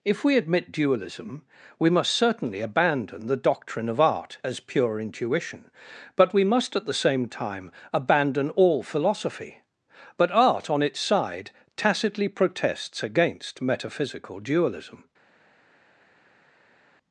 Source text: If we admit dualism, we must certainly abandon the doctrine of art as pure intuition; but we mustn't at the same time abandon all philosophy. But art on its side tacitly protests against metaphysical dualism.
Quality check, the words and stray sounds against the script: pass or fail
fail